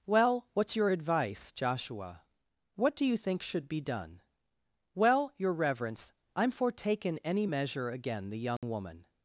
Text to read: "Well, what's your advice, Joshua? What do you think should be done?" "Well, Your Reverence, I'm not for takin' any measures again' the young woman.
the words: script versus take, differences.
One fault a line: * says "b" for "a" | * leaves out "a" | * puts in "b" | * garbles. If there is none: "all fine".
* leaves out "not"
* says "measure" for "measures"